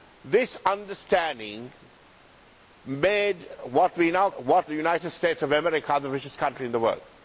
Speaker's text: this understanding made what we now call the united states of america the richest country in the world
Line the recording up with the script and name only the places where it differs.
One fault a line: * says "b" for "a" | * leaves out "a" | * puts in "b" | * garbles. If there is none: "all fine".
* says "what" for "call"